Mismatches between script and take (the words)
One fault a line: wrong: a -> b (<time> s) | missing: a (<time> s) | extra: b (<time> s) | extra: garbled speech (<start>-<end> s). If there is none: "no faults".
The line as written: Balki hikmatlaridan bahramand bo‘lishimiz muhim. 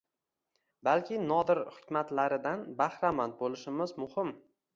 extra: nodir (1.3 s)